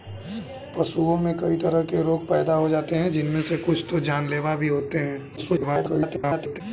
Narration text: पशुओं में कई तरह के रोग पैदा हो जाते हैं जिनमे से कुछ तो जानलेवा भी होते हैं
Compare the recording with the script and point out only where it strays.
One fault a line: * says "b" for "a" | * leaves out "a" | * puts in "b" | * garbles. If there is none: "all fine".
* garbles